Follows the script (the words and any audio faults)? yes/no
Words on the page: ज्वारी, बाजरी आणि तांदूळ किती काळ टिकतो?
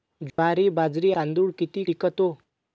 no